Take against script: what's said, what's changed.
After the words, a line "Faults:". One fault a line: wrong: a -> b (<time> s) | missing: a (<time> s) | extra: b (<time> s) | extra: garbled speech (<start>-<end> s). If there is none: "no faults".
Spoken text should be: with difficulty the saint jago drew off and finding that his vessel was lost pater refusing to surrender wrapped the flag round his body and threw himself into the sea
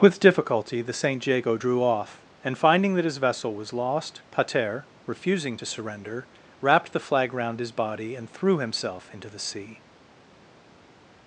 with difficulty the saint jago drew off and finding that his vessel was lost pater refusing to surrender wrapped the flag round his body and threw himself into the sea
Faults:
no faults